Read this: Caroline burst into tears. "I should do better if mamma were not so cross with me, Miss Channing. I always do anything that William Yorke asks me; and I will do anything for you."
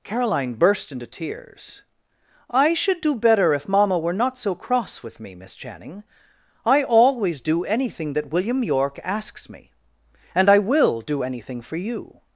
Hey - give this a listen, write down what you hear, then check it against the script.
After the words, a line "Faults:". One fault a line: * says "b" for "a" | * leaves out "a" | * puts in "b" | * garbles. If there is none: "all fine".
Caroline burst into tears. "I should do better if mamma were not so cross with me, Miss Channing. I always do anything that William Yorke asks me; and I will do anything for you."
Faults:
all fine